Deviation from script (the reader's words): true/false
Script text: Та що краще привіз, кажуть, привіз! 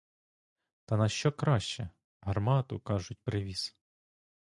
true